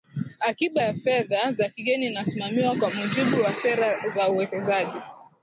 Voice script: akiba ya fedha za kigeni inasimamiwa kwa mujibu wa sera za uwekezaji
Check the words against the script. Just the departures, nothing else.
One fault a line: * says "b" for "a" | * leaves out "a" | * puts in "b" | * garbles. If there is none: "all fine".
all fine